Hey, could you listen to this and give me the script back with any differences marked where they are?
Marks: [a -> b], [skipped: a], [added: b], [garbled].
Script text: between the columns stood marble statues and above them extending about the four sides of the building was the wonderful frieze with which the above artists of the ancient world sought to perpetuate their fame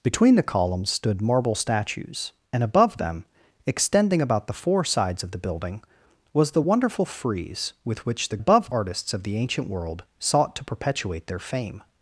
between the columns stood marble statues and above them extending about the four sides of the building was the wonderful frieze with which the above artists of the ancient world sought to perpetuate their fame